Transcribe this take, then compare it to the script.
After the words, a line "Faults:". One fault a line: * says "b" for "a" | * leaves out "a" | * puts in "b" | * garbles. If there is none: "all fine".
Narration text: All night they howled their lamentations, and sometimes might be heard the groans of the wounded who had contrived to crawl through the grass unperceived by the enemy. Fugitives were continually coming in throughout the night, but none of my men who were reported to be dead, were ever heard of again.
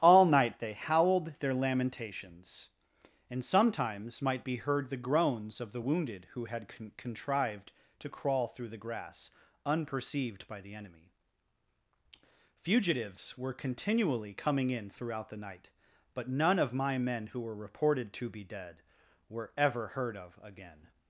All night they howled their lamentations, and sometimes might be heard the groans of the wounded who had con contrived to crawl through the grass unperceived by the enemy. Fugitives were continually coming in throughout the night, but none of my men who were reported to be dead, were ever heard of again.
Faults:
* puts in "con"